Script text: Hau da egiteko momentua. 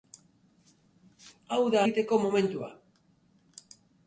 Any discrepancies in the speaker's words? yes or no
no